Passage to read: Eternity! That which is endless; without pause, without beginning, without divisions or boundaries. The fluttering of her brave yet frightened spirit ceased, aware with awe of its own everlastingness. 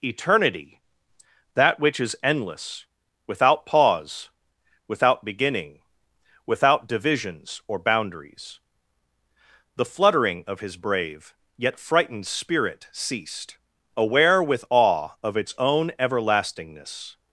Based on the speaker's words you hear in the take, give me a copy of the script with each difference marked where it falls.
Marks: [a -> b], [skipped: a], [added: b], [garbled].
Eternity! That which is endless; without pause, without beginning, without divisions or boundaries. The fluttering of [her -> his] brave yet frightened spirit ceased, aware with awe of its own everlastingness.